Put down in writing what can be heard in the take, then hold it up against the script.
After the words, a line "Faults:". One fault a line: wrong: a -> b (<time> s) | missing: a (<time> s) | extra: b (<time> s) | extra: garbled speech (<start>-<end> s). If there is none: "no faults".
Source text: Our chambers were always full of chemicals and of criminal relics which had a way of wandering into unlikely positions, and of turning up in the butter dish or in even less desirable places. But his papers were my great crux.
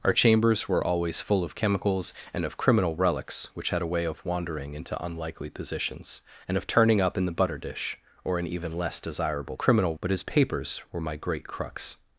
Our chambers were always full of chemicals and of criminal relics which had a way of wandering into unlikely positions, and of turning up in the butter dish or in even less desirable criminal. But his papers were my great crux.
Faults:
wrong: places -> criminal (9.6 s)